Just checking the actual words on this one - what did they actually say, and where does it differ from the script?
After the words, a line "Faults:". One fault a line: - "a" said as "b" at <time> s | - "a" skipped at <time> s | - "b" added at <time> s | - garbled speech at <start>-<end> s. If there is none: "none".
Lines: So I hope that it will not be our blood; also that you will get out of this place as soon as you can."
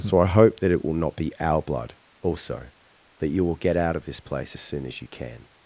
So I hope that it will not be our blood; also that you will get out of this place as soon as you can."
Faults:
none